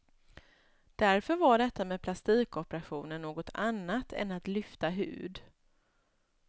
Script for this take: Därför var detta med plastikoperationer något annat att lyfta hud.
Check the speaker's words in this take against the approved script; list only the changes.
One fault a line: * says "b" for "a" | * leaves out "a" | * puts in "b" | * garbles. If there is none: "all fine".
* puts in "än"